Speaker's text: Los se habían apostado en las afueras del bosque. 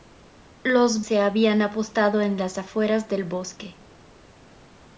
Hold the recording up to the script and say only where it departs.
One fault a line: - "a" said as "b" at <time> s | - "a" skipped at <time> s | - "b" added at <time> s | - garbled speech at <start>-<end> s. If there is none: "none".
none